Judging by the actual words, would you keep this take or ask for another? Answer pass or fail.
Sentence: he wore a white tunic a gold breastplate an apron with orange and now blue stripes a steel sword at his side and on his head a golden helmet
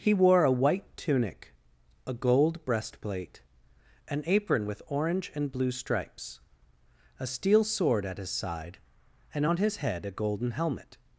fail